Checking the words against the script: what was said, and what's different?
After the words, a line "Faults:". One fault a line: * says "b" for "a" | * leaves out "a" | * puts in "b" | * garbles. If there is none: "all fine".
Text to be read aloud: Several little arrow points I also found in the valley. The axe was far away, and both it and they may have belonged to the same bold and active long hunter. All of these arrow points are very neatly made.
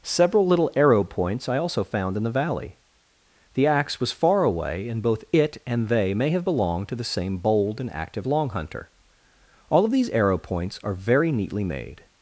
Several little arrow points I also found in the valley. The axe was far away, and both it and they may have belonged to the same bold and active long hunter. All of these arrow points are very neatly made.
Faults:
all fine